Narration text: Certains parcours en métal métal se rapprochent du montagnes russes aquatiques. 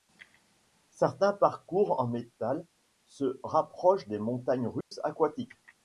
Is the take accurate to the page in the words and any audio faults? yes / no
no